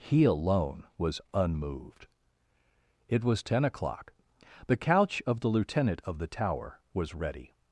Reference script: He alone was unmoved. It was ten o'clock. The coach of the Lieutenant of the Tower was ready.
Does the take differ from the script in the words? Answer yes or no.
yes